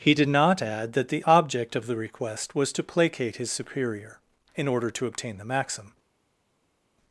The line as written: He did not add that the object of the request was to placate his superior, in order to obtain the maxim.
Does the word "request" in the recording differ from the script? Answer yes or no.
no